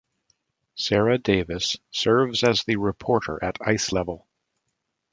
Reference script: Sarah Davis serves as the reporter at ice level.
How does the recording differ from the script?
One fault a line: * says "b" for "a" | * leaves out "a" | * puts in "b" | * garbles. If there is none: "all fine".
all fine